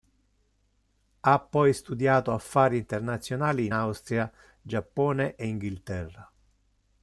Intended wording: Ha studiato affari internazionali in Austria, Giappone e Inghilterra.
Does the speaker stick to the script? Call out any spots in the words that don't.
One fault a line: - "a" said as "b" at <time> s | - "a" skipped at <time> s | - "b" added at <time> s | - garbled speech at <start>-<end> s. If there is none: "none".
- "poi" added at 1.4 s